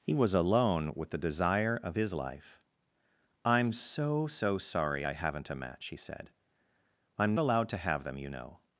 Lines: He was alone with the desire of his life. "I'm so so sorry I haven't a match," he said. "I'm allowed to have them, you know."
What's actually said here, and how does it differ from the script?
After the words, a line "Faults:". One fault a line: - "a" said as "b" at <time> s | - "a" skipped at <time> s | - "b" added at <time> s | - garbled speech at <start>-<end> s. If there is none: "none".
He was alone with the desire of his life. "I'm so so sorry I haven't a match," he said. "I'm allowed to have them, you know."
Faults:
none